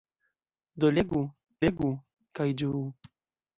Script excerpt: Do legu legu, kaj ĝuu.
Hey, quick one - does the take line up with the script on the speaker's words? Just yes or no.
yes